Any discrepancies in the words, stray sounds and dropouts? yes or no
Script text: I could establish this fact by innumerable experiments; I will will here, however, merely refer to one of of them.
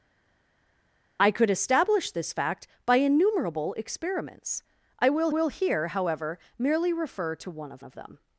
no